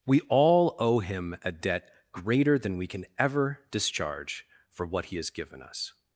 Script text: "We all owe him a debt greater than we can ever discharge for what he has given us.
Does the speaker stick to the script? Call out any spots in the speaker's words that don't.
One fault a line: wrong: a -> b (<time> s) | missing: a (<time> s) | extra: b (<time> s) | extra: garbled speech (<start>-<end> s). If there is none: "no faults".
no faults